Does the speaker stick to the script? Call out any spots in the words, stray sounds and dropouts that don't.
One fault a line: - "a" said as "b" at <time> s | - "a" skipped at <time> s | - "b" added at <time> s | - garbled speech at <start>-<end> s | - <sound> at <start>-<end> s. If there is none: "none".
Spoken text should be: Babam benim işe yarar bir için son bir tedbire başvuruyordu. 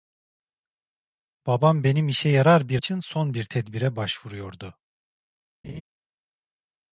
- laugh at 5.6-5.8 s